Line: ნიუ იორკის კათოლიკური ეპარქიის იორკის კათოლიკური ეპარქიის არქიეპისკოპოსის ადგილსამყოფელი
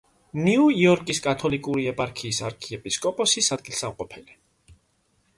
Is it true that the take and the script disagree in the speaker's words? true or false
true